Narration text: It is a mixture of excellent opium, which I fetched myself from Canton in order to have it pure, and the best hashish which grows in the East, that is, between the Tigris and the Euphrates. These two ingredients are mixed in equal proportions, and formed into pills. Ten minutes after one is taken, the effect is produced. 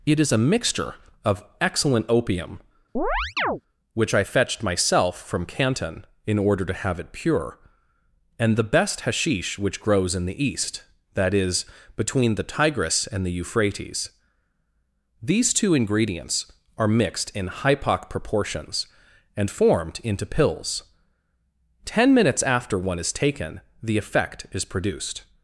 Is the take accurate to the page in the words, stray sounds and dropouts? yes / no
no